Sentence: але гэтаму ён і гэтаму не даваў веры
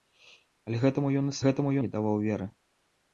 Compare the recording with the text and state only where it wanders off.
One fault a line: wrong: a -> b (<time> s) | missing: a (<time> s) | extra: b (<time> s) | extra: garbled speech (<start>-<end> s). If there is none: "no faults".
no faults